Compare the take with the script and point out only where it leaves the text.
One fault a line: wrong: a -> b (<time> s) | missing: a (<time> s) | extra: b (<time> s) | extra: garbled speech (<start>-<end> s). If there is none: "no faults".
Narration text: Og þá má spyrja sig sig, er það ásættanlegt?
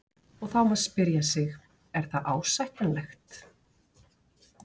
missing: sig (1.5 s)